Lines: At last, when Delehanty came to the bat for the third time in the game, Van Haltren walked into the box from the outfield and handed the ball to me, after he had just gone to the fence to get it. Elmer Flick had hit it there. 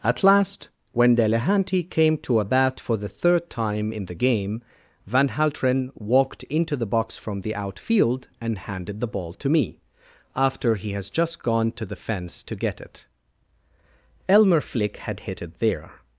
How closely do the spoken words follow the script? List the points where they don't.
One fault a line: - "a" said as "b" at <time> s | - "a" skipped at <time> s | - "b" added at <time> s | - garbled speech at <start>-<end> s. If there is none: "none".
- "the" said as "a" at 2.4 s
- "had" said as "has" at 10.9 s